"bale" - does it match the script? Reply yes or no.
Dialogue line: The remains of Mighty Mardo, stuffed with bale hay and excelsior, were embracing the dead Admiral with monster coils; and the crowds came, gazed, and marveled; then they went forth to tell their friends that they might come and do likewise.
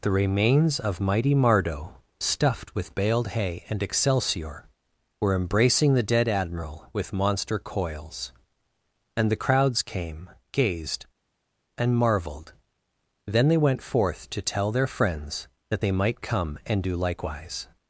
no